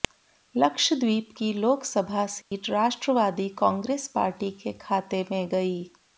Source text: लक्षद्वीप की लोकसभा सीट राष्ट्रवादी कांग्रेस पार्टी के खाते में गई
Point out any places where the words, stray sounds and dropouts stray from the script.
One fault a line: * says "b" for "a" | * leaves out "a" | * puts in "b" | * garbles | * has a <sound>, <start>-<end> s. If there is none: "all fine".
* has a dropout, 2.4-2.5 s